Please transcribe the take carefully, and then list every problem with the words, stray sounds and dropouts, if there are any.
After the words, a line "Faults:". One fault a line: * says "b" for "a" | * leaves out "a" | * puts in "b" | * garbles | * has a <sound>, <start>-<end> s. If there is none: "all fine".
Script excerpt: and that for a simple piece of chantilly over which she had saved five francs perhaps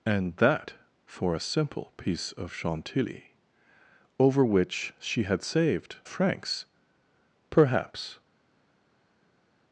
and that for a simple piece of chantilly over which she had saved francs perhaps
Faults:
* leaves out "five"